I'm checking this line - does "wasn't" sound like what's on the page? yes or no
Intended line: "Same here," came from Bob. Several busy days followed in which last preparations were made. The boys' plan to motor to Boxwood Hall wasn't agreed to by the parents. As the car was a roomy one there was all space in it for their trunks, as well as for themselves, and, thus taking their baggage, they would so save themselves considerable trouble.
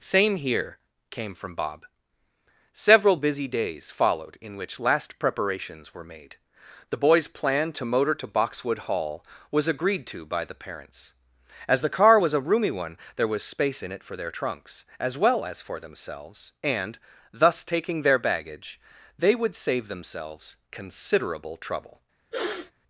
no